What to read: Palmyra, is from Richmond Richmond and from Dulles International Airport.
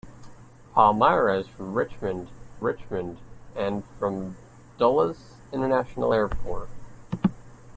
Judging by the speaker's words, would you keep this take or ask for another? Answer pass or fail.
pass